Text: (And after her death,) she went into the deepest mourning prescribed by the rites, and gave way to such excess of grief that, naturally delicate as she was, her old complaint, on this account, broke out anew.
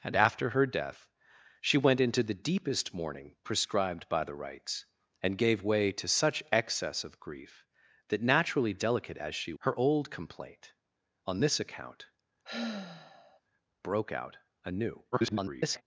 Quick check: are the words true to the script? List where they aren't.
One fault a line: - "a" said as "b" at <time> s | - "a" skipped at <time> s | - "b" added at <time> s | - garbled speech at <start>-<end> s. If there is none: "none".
- "was" skipped at 9.5 s
- garbled speech at 15.1-15.8 s